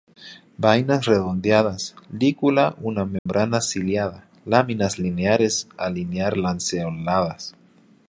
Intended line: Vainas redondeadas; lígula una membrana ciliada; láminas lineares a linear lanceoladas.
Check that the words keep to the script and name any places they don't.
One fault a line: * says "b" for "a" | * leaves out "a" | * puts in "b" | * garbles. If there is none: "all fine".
all fine